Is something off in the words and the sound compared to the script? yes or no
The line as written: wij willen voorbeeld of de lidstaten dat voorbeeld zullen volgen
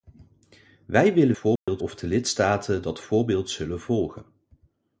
yes